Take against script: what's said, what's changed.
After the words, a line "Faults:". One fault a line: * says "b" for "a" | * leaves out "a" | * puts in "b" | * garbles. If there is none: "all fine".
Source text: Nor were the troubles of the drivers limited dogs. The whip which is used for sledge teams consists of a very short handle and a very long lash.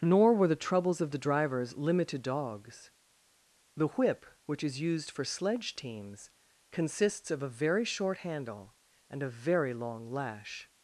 Nor were the troubles of the drivers limited dogs. The whip which is used for sledge teams consists of a very short handle and a very long lash.
Faults:
all fine